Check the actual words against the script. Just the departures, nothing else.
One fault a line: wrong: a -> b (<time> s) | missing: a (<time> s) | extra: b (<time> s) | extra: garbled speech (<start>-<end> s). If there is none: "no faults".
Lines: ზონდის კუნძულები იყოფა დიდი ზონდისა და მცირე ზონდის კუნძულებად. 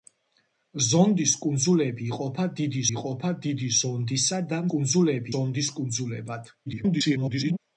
extra: იყოფა დიდი (2.9 s)
wrong: მცირე -> კუნძულები (4.7 s)
extra: garbled speech (6.7-7.6 s)